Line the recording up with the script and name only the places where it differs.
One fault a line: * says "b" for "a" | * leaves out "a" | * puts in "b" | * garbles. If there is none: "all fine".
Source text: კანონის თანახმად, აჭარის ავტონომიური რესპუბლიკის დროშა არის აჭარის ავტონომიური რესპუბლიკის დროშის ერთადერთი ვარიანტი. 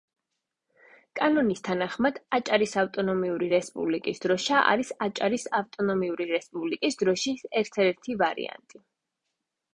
all fine